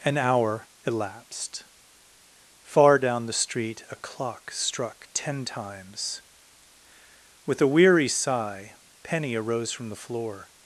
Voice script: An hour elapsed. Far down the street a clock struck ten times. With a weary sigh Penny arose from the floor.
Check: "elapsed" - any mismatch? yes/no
no